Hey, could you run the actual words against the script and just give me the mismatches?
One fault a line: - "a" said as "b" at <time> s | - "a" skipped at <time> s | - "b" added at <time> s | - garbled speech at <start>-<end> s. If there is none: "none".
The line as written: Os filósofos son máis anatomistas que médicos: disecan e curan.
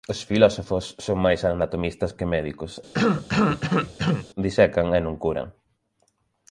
- "non" added at 5.0 s